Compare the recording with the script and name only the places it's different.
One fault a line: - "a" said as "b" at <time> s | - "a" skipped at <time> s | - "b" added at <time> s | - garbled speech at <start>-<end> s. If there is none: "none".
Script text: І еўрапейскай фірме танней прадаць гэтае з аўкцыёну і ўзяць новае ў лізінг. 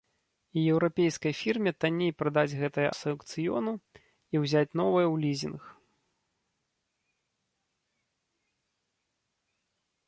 none